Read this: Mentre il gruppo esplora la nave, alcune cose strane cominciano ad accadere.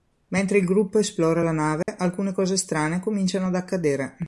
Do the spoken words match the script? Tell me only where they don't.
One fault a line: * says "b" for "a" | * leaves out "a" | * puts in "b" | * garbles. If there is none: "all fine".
all fine